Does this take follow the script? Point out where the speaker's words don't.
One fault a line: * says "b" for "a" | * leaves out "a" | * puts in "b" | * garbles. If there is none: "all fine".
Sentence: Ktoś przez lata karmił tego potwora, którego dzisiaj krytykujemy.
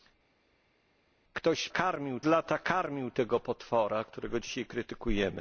* says "karmił" for "przez"